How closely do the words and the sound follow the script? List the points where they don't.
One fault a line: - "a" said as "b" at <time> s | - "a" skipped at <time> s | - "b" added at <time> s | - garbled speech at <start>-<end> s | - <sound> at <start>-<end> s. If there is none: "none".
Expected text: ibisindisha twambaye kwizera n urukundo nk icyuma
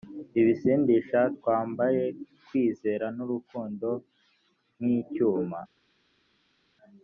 none